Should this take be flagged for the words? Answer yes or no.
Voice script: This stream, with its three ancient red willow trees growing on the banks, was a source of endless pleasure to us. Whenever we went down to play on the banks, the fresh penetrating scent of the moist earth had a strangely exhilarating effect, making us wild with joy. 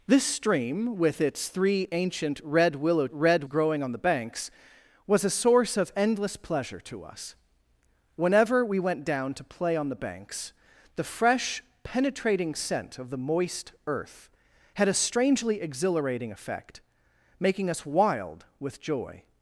yes